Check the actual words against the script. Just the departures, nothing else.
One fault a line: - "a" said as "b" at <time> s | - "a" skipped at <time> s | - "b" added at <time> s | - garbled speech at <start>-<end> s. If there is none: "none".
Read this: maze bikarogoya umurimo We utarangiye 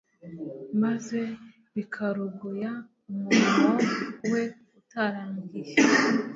none